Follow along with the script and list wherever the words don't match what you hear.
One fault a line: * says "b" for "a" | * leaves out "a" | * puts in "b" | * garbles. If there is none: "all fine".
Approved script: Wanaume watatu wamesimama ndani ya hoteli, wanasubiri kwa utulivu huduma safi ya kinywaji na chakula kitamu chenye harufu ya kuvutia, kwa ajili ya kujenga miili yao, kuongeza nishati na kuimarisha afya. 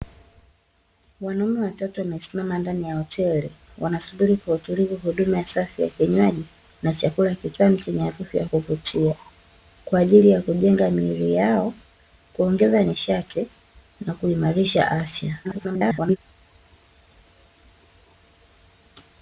* garbles